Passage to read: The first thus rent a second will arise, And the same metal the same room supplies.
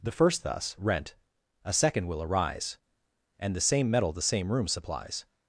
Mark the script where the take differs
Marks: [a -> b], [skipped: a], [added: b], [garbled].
The first thus rent a second will arise, And the same metal the same room supplies.